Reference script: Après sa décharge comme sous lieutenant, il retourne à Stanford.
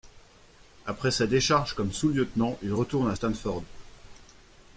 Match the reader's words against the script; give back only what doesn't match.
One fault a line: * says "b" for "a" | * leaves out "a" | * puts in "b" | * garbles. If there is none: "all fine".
all fine